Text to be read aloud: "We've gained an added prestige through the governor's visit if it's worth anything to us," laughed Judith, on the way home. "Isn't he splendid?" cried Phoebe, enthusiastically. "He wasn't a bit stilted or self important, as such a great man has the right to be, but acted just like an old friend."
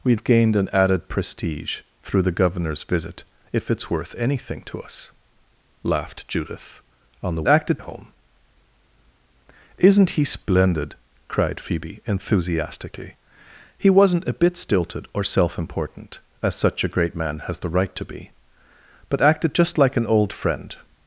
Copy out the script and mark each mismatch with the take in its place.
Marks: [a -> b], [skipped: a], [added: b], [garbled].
"We've gained an added prestige through the governor's visit if it's worth anything to us," laughed Judith, on the [way -> acted] home. "Isn't he splendid?" cried Phoebe, enthusiastically. "He wasn't a bit stilted or self important, as such a great man has the right to be, but acted just like an old friend."